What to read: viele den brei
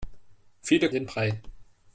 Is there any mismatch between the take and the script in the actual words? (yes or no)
no